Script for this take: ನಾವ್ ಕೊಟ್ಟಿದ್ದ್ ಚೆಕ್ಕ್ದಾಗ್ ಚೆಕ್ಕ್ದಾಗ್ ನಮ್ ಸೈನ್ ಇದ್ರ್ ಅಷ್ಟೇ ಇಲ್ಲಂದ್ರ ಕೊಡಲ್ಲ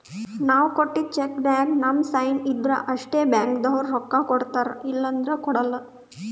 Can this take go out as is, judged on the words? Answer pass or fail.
fail